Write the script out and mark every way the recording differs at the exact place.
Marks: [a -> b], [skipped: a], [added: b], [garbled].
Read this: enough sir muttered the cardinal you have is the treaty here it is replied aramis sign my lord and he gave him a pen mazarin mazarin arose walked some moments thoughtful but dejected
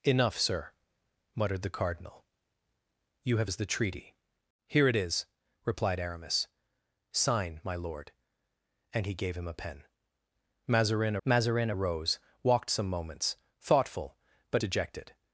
enough sir muttered the cardinal you have is the treaty here it is replied aramis sign my lord and he gave him a pen mazarin mazarin arose walked some moments thoughtful but dejected